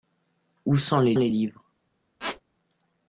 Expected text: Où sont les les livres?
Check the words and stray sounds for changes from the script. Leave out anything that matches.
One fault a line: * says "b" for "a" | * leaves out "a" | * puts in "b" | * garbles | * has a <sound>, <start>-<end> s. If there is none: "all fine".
* has a squeak, 2.2-2.4 s